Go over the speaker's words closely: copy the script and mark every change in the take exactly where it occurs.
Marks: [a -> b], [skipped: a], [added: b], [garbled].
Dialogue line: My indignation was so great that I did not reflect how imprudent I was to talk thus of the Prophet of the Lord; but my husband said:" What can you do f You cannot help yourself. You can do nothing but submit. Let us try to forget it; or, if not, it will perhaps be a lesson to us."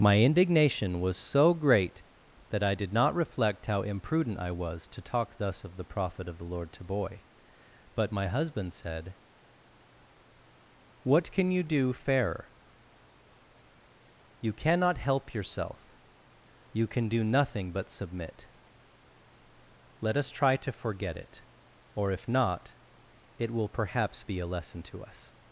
My indignation was so great that I did not reflect how imprudent I was to talk thus of the Prophet of the Lord; [added: to boy] but my husband said:" What can you do [f -> fairer] You cannot help yourself. You can do nothing but submit. Let us try to forget it; or, if not, it will perhaps be a lesson to us."